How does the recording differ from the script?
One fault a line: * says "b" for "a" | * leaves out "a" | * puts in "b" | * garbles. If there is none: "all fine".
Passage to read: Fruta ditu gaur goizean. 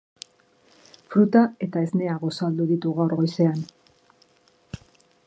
* puts in "eta esnea gosaldu"